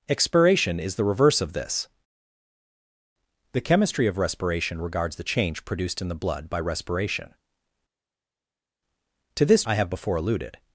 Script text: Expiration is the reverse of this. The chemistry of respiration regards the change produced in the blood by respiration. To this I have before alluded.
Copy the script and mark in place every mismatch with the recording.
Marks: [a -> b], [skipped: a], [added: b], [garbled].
Expiration is the reverse of this. The chemistry of respiration regards the change produced in the blood by respiration. To this I have before alluded.